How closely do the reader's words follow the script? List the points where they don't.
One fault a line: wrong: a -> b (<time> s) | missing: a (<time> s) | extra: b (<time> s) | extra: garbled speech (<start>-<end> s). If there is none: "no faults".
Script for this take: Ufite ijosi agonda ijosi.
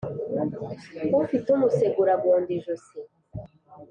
wrong: ijosi -> umusegura (1.6 s)